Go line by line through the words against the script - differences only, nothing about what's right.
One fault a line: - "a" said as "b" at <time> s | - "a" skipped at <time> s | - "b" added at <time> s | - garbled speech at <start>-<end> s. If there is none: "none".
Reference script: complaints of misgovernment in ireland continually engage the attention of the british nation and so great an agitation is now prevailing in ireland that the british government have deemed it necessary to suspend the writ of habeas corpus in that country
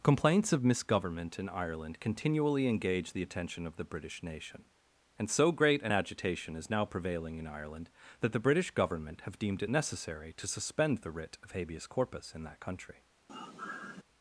none